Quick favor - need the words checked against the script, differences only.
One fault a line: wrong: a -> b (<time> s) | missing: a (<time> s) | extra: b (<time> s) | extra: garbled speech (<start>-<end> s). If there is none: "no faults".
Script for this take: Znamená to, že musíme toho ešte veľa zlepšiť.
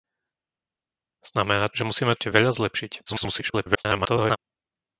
missing: to (1.7 s)
missing: toho (2.1 s)
extra: garbled speech (3.1-4.4 s)